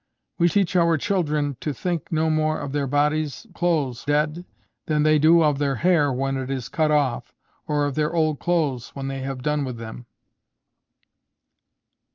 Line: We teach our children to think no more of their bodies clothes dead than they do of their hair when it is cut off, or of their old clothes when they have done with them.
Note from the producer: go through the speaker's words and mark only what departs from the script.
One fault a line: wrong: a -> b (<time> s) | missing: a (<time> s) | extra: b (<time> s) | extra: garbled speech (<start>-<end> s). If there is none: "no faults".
no faults